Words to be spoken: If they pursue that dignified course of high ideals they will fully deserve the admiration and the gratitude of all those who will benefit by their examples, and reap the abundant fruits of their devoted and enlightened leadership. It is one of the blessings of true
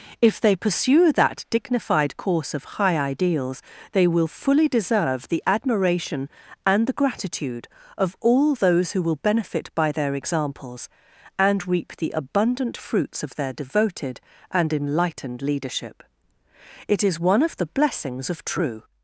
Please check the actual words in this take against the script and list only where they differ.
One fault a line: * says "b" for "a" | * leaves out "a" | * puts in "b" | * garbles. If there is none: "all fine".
all fine